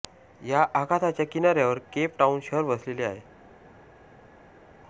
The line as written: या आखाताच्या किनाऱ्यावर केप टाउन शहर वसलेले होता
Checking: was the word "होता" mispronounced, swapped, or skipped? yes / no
yes